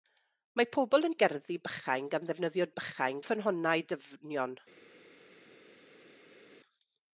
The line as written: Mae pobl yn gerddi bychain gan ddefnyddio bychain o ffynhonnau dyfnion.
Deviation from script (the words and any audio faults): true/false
false